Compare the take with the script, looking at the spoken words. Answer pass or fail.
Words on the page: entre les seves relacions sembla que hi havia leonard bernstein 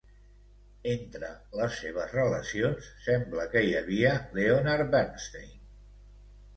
pass